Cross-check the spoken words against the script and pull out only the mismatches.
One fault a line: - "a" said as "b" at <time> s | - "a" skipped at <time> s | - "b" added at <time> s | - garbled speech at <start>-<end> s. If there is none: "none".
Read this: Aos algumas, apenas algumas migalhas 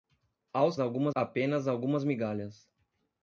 none